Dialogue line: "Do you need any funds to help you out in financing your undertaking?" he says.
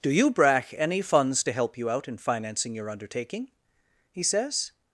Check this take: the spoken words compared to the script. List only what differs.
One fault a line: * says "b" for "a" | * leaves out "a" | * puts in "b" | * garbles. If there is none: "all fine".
* says "brach" for "need"